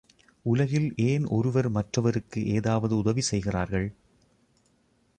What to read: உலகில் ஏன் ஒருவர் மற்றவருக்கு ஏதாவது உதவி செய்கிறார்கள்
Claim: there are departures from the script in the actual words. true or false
false